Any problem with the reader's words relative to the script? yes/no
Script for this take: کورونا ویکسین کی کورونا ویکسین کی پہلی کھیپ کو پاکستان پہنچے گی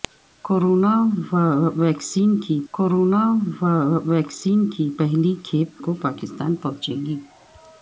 no